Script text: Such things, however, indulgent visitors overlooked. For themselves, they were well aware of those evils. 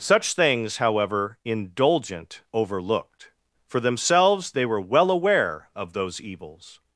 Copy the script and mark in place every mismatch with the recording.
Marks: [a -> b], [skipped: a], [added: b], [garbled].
Such things, however, indulgent [skipped: visitors] overlooked. For themselves, they were well aware of those evils.